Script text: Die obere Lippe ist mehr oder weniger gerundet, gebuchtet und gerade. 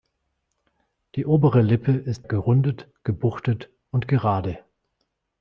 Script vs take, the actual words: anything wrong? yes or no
yes